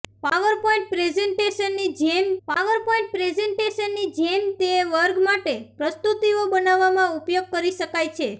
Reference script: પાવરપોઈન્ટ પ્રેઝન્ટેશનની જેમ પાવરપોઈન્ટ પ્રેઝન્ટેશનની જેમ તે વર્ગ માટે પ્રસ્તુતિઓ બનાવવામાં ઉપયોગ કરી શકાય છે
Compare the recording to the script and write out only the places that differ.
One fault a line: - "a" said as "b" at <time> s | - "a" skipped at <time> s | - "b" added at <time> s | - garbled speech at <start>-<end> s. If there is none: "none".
none